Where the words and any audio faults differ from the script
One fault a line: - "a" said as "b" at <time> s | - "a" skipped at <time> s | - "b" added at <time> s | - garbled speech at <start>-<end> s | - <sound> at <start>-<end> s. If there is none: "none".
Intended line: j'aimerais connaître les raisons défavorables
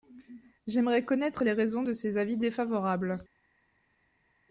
- "de ces avis" added at 1.8 s